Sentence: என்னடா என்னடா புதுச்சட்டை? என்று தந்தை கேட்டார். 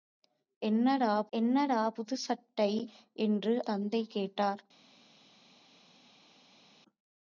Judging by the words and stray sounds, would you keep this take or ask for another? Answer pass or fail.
pass